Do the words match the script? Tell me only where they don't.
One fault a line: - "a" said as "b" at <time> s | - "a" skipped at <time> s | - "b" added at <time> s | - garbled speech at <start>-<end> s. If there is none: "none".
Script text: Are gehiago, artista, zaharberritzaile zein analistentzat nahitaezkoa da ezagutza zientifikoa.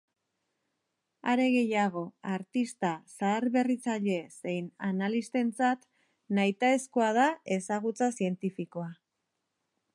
none